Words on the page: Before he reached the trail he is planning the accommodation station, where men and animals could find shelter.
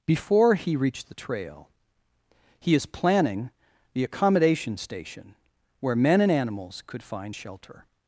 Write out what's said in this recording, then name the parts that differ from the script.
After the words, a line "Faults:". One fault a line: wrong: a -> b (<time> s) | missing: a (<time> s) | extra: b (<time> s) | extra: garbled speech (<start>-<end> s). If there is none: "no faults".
Before he reached the trail he is planning the accommodation station, where men and animals could find shelter.
Faults:
no faults